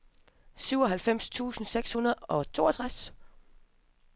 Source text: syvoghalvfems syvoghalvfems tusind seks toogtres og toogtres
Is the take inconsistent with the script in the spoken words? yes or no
yes